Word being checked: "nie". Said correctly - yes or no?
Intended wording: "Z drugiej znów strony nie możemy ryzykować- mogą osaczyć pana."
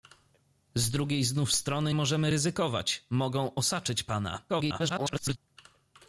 no